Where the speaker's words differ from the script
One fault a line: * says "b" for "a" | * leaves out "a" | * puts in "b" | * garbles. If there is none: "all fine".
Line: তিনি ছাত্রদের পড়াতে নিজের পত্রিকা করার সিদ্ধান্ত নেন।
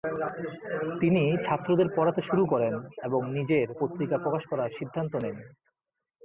* puts in "শুরু করেন এবং"
* puts in "প্রকাশ"